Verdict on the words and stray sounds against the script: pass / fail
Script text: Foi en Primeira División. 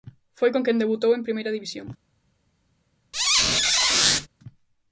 fail